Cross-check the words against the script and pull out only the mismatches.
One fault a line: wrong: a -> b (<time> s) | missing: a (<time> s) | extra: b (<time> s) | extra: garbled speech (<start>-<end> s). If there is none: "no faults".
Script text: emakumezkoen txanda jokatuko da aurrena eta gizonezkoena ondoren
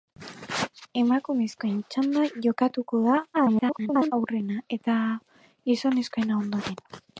extra: garbled speech (3.3-4.1 s)